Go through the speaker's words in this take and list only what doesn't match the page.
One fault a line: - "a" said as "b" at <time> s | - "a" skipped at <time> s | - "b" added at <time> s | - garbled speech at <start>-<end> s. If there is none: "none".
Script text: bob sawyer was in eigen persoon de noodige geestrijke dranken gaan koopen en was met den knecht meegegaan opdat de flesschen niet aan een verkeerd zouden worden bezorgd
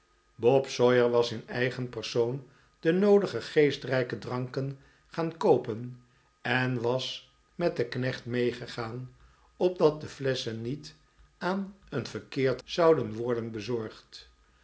none